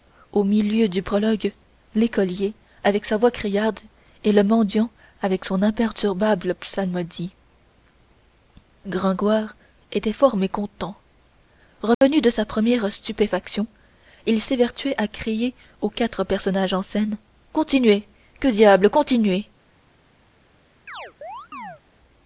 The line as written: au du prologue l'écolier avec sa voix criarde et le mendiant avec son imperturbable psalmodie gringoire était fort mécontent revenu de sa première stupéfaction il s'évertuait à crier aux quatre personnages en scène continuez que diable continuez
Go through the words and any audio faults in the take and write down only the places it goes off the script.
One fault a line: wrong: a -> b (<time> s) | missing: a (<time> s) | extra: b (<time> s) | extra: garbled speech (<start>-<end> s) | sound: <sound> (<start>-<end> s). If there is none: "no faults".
extra: milieu (0.4 s)
sound: dropout (11.9-12.0 s)
sound: chirp (20.9-21.8 s)